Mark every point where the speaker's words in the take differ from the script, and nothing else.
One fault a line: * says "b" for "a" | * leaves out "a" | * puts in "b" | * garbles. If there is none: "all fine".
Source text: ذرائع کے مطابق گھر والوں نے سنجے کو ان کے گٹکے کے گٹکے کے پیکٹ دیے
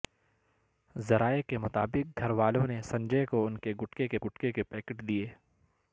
all fine